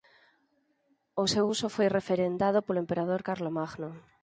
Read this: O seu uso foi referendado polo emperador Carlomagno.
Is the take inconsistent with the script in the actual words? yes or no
no